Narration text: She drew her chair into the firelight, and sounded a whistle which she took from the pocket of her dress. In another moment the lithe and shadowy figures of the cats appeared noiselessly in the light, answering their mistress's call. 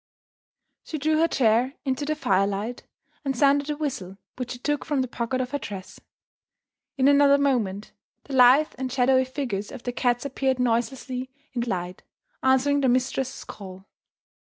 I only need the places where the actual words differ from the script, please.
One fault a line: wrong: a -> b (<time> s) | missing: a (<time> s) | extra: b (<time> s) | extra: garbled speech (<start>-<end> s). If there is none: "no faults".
no faults